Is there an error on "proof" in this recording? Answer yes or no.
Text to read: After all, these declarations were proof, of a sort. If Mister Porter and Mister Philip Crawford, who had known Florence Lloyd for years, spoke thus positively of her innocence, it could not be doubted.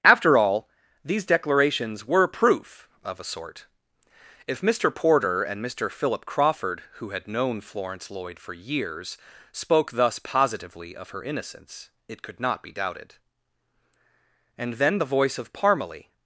no